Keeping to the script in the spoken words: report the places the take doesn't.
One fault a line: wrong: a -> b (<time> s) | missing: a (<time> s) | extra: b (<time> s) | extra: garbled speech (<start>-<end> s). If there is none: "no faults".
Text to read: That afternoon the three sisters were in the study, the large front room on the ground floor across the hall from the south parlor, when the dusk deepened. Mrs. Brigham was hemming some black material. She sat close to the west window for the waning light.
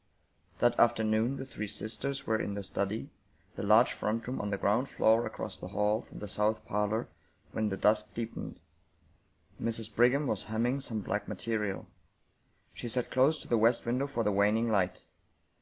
no faults